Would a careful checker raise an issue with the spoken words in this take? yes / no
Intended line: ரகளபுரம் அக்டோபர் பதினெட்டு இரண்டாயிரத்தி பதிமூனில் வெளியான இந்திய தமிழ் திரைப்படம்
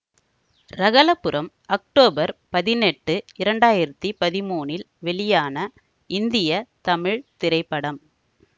no